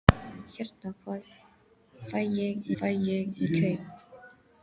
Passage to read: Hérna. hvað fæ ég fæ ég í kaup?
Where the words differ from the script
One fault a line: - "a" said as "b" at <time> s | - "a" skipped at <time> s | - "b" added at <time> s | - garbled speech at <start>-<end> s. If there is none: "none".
none